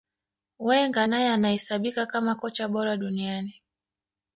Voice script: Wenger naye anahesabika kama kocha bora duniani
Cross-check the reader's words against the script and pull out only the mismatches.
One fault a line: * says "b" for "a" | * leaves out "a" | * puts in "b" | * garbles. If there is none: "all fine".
all fine